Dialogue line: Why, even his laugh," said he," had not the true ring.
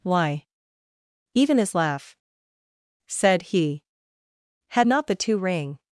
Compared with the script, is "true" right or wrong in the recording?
wrong